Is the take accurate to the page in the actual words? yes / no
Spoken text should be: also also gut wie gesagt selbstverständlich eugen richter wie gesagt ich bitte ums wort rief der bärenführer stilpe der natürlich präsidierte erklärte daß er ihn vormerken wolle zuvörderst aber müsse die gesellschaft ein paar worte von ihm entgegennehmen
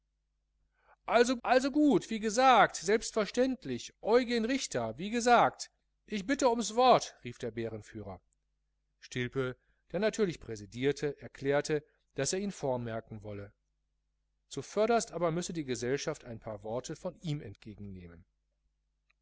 yes